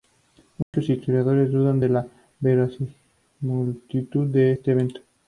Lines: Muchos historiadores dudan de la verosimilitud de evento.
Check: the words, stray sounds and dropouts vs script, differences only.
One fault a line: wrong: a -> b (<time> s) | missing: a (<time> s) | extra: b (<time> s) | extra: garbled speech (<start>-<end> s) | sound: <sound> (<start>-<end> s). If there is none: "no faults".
sound: dropout (0.6-0.7 s)
extra: este (4.5 s)